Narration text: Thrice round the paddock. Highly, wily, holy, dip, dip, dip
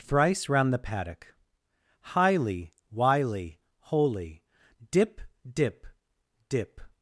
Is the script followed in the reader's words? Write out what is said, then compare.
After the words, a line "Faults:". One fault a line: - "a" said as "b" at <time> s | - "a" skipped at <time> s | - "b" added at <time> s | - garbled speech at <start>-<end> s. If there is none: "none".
Thrice round the paddock. Highly, wily, holy, dip, dip, dip
Faults:
none